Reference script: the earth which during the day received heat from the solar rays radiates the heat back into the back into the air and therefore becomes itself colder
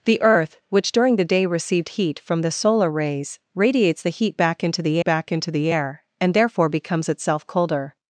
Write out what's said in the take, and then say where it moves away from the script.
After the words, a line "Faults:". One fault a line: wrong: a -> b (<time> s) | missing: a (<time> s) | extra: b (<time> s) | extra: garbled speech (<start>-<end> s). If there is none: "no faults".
the earth which during the day received heat from the solar rays radiates the heat back into the back into the air and therefore becomes itself colder
Faults:
no faults